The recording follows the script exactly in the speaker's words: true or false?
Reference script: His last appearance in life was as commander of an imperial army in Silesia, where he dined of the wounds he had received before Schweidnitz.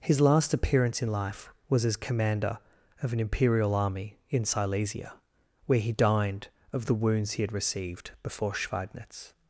true